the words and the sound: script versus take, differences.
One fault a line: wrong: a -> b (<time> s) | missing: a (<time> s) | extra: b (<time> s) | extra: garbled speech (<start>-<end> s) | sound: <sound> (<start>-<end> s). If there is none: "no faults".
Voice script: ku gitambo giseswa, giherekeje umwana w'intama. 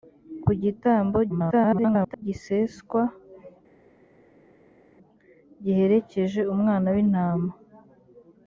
extra: garbled speech (1.3-2.2 s)